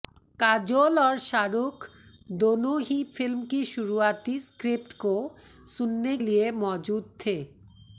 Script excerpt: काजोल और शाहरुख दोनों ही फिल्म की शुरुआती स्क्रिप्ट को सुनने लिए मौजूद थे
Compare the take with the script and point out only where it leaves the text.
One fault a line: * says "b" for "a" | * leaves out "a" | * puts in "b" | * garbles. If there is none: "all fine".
all fine